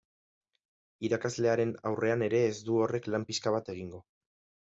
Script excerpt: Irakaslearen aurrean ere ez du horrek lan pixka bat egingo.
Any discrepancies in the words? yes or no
no